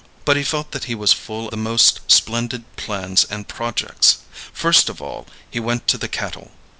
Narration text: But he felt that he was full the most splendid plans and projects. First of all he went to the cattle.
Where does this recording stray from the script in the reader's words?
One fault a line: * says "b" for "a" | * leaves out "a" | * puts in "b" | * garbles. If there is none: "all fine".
all fine